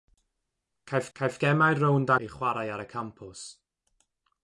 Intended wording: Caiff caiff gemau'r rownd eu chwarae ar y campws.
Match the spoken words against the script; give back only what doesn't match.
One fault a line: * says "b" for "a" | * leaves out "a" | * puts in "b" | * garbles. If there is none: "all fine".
all fine